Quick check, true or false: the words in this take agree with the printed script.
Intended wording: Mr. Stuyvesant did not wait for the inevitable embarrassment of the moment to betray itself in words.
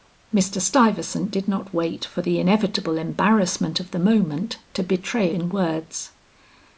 false